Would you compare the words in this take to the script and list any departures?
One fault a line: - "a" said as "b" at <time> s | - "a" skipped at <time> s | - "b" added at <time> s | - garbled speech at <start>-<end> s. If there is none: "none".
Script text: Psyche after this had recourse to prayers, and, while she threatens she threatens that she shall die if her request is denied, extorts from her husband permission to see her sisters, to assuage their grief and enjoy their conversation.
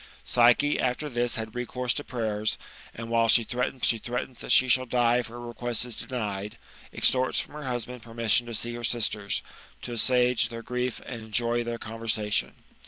none